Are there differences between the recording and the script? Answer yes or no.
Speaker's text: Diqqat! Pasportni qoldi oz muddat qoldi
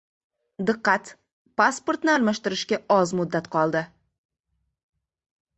yes